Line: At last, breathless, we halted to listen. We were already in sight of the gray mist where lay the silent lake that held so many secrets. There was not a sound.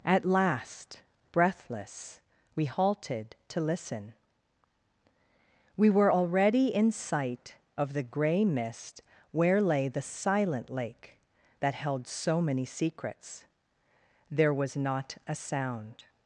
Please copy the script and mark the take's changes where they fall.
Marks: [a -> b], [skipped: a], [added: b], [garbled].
At last, breathless, we halted to listen. We were already in sight of the gray mist where lay the silent lake that held so many secrets. There was not a sound.